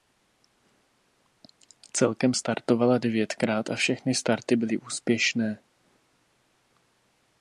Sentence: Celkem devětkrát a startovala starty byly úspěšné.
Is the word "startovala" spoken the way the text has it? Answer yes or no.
no